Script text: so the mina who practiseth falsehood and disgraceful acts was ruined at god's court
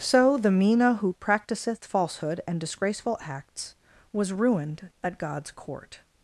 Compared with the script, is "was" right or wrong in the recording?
right